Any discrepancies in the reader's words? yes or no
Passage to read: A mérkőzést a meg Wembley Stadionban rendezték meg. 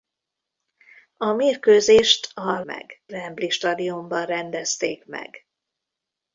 no